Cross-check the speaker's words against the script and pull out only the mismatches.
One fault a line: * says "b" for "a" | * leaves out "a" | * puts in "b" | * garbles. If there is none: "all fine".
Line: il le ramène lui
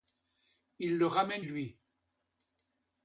all fine